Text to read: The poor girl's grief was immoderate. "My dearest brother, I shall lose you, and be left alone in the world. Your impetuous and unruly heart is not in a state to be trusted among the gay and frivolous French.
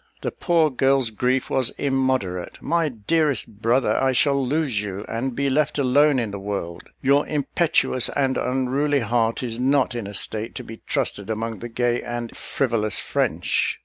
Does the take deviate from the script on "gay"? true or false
false